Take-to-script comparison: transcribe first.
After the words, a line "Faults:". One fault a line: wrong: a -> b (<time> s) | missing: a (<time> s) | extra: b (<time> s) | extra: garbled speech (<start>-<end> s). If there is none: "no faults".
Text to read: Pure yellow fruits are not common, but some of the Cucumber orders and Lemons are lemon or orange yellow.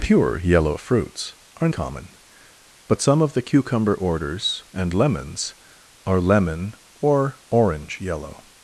Pure yellow fruits are common, but some of the Cucumber orders and Lemons are lemon or orange yellow.
Faults:
missing: not (1.7 s)